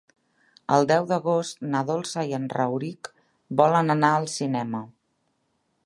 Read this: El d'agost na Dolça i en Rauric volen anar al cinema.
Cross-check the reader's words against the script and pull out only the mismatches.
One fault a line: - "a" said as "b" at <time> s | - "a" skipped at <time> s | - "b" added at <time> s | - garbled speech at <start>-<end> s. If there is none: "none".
- "deu" added at 0.9 s